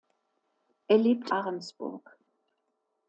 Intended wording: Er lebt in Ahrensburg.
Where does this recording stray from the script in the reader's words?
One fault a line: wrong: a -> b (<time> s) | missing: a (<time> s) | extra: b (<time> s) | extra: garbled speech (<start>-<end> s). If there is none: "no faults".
missing: in (1.3 s)